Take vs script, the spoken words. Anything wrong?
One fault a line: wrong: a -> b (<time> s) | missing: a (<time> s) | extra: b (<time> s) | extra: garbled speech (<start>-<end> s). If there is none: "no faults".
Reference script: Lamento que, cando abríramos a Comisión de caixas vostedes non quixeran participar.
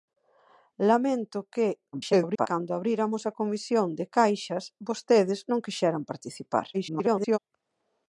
extra: garbled speech (1.9-2.5 s)
extra: garbled speech (6.7-7.4 s)